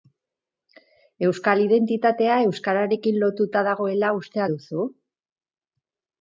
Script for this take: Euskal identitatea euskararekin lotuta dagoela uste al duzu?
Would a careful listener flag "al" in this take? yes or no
yes